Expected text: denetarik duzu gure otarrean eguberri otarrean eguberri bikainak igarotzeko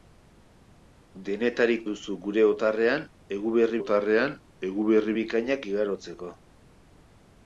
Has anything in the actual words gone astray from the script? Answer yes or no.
no